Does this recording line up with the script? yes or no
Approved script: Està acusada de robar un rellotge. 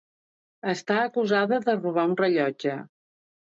yes